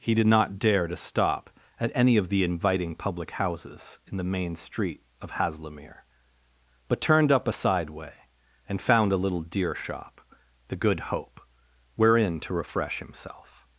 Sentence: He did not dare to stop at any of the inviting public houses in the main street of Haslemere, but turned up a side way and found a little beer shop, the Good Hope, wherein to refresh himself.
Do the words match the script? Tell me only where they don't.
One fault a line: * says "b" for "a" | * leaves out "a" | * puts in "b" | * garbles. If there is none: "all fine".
* says "deer" for "beer"